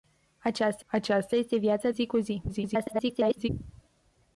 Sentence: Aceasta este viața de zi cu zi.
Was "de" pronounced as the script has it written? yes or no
no